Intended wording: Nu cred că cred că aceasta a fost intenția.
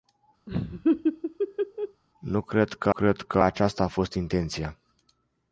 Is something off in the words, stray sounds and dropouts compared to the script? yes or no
yes